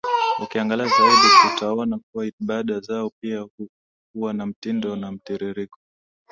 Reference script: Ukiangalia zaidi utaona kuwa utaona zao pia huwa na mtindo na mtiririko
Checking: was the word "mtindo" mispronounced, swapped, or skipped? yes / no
no